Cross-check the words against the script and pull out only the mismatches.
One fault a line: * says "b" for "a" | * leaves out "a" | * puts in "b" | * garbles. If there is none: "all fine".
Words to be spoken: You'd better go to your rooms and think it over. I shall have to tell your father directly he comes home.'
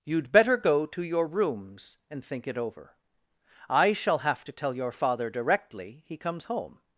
all fine